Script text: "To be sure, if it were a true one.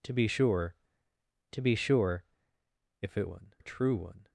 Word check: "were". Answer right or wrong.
wrong